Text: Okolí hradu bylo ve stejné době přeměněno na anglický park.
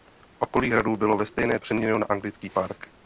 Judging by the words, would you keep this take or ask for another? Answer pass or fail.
fail